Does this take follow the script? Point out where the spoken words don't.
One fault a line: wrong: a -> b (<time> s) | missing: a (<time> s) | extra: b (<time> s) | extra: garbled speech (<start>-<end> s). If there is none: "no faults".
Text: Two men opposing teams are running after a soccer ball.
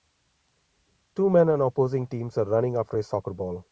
extra: on (1.5 s)